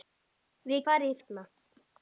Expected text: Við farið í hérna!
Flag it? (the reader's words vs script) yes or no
no